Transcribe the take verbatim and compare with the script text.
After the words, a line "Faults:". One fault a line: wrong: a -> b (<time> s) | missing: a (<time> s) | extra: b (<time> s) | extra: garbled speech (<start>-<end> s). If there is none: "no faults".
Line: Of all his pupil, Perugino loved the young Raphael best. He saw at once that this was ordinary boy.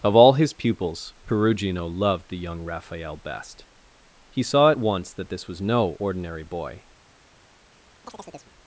Of all his pupils, Perugino loved the young Raphael best. He saw at once that this was no ordinary boy.
Faults:
wrong: pupil -> pupils (0.5 s)
extra: no (5.6 s)